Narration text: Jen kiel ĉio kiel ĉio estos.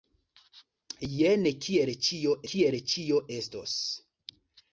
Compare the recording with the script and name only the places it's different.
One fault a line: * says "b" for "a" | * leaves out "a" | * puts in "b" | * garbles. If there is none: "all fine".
all fine